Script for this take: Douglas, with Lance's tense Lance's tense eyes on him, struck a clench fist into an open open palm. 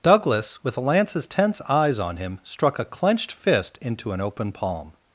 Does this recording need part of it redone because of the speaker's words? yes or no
yes